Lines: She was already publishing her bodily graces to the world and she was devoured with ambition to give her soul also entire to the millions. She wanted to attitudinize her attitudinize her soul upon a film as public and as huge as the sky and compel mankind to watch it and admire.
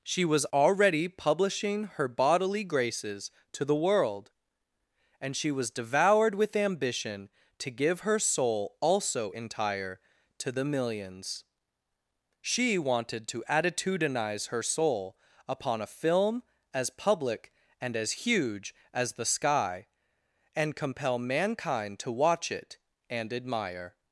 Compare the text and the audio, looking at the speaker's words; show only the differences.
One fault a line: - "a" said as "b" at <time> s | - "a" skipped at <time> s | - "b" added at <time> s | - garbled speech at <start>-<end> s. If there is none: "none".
- "attitudinize her" skipped at 14.6 s